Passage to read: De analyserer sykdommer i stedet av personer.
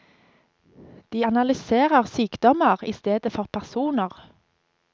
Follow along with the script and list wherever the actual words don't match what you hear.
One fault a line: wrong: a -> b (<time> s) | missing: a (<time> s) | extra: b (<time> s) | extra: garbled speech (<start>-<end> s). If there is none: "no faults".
wrong: av -> for (3.3 s)